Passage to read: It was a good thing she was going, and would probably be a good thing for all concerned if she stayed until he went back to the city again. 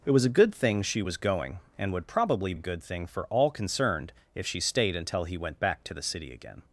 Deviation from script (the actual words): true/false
true